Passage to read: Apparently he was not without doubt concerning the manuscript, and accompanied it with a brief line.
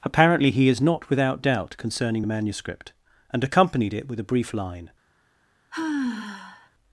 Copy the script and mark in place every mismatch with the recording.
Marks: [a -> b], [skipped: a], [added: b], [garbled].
Apparently he [was -> is] not without doubt concerning the manuscript, and accompanied it with a brief line.